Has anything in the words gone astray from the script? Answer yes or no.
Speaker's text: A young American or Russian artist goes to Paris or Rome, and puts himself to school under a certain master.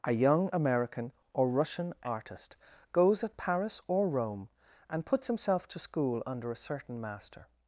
yes